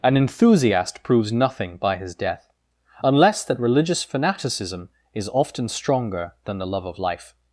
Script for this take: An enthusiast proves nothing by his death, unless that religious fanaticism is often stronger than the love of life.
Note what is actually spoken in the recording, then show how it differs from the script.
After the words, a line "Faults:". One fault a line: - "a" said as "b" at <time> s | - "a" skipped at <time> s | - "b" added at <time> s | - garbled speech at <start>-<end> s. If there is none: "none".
An enthusiast proves nothing by his death, unless that religious fanaticism is often stronger than the love of life.
Faults:
none